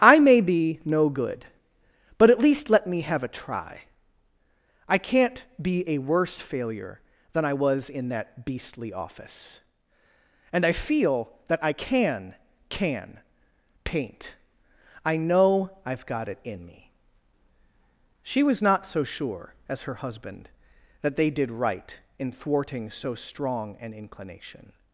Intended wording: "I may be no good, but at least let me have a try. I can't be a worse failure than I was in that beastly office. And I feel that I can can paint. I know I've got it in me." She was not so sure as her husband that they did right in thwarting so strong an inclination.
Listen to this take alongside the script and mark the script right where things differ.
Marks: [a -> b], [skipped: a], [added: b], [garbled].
"I may be no good, but at least let me have a try. I can't be a worse failure than I was in that beastly office. And I feel that I can can paint. I know I've got it in me." She was not so sure as her husband that they did right in thwarting so strong an inclination.